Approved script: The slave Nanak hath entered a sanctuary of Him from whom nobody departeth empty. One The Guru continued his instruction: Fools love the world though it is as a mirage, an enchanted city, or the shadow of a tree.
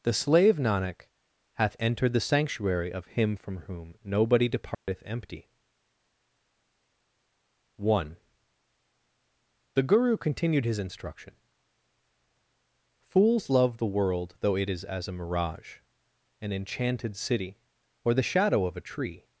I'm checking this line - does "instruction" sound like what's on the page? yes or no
yes